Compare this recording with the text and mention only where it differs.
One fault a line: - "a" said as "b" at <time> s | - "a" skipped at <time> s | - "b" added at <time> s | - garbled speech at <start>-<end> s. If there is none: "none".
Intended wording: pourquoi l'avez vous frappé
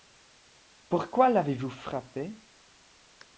none